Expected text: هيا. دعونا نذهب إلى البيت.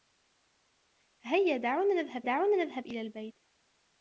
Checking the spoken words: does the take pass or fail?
fail